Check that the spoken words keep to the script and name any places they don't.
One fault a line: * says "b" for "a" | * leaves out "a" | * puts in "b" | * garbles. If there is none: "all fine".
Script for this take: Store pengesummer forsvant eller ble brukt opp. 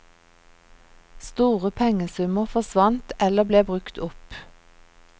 all fine